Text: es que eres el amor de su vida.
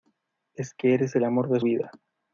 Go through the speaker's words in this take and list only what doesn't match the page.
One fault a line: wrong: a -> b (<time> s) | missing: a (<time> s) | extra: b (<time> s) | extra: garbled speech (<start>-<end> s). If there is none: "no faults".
missing: su (1.6 s)